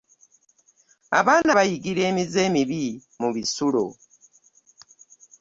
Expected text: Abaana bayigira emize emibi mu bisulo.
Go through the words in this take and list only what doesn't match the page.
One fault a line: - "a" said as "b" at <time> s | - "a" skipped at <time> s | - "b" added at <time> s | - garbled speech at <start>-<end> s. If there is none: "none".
none